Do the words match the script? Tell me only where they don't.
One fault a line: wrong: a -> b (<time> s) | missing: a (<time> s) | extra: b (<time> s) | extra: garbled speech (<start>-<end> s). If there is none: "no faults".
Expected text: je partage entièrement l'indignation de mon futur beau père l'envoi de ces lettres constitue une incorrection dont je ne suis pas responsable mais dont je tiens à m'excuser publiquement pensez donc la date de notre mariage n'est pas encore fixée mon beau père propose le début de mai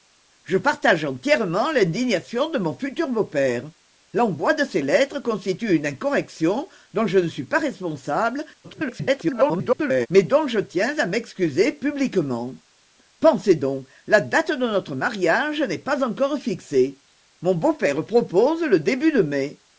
extra: garbled speech (8.6-10.1 s)